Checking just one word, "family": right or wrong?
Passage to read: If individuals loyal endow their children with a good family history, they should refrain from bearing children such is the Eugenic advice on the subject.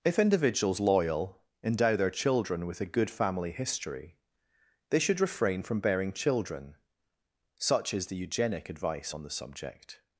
right